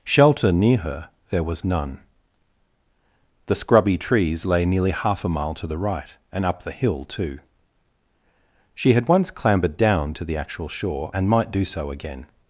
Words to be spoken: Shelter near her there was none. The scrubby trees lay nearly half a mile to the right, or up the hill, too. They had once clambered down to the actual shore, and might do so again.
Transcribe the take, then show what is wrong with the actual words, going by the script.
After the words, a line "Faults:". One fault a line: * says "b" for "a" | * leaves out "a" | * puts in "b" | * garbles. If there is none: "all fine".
Shelter near her there was none. The scrubby trees lay nearly half a mile to the right, and up the hill, too. She had once clambered down to the actual shore, and might do so again.
Faults:
* says "and" for "or"
* says "She" for "They"